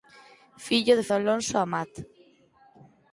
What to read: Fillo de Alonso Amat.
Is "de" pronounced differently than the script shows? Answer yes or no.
no